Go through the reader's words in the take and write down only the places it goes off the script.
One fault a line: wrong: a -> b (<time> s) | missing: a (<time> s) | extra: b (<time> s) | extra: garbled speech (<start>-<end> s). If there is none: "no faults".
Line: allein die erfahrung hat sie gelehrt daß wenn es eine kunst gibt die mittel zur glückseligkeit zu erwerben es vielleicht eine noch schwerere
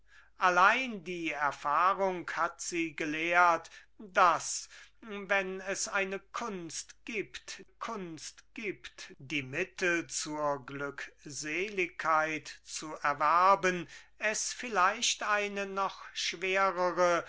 extra: kunst gibt (7.7 s)